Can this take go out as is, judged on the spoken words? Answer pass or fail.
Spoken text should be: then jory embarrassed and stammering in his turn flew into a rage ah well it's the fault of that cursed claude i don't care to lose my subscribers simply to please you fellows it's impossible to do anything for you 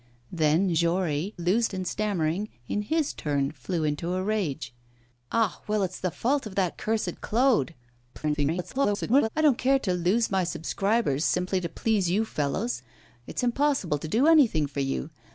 fail